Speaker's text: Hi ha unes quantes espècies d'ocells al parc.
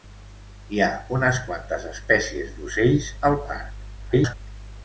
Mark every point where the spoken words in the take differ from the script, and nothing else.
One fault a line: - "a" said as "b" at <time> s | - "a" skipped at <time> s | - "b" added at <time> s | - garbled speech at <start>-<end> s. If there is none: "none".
- garbled speech at 4.0-4.4 s